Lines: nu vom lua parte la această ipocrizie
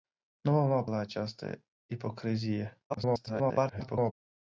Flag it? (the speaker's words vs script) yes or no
yes